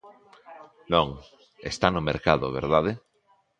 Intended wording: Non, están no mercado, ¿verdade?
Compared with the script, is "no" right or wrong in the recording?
right